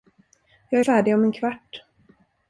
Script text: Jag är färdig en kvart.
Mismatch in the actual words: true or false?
true